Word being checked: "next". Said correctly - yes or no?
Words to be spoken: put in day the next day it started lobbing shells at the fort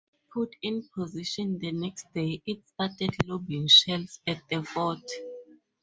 yes